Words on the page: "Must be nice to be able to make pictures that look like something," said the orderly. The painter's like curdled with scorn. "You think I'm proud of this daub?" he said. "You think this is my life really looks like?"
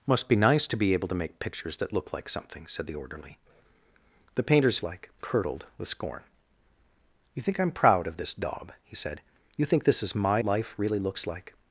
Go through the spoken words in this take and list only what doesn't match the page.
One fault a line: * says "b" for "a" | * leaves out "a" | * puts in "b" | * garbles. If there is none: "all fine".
all fine